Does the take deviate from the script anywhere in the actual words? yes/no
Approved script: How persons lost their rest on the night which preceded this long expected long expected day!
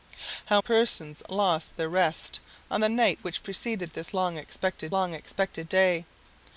no